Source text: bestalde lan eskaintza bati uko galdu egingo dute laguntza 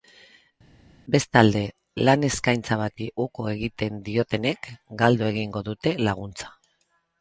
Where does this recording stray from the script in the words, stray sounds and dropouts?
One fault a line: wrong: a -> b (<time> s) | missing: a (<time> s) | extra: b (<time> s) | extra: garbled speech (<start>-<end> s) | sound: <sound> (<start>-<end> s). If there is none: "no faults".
extra: egiten diotenek (3.5 s)